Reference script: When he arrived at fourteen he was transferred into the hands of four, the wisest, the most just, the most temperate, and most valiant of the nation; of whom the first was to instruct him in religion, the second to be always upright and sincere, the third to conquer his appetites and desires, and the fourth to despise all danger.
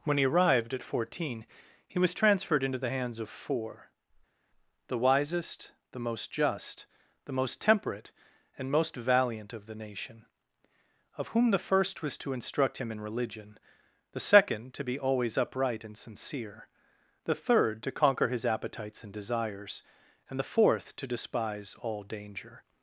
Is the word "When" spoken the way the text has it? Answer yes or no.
yes